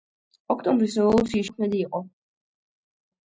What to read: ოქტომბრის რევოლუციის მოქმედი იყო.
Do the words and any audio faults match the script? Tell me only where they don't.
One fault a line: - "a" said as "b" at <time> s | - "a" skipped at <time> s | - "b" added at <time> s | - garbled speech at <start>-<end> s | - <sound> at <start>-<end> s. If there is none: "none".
none